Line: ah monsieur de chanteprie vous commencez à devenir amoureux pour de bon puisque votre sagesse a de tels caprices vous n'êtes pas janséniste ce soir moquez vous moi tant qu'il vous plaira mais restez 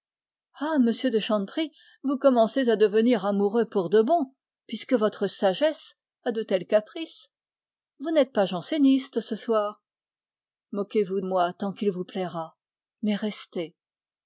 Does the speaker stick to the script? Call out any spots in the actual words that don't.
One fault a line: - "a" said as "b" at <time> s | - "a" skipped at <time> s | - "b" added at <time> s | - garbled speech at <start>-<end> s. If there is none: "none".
none